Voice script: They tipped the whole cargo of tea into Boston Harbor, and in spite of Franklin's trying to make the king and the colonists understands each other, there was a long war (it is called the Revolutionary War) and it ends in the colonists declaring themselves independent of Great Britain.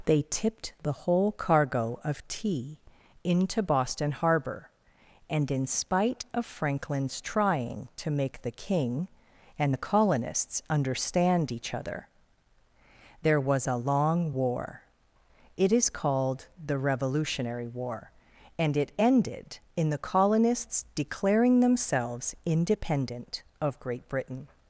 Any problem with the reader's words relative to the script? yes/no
yes